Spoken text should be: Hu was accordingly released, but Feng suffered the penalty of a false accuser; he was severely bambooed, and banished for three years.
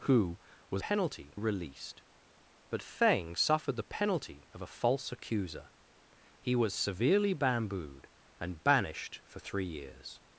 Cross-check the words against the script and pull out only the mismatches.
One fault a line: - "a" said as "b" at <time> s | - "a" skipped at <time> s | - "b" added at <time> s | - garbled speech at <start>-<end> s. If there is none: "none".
- "accordingly" said as "penalty" at 0.8 s